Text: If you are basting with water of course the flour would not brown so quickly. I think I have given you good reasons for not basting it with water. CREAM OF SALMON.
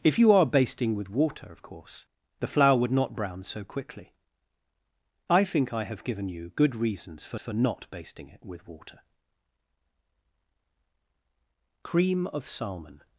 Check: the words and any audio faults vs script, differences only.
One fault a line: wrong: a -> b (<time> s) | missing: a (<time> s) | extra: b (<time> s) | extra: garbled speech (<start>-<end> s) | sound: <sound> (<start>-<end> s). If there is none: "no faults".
extra: for (7.4 s)